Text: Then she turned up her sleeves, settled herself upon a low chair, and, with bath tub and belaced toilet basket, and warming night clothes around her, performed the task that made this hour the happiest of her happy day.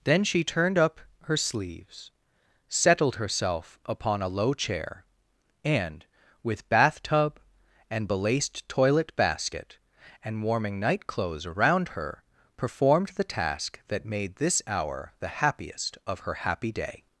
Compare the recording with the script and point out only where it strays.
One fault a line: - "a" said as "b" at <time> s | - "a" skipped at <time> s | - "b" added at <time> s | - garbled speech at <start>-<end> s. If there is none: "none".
none